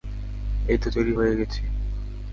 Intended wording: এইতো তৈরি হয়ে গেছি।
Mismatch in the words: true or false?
false